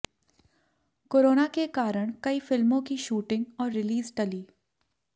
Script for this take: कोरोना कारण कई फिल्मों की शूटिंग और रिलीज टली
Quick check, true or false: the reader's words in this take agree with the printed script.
false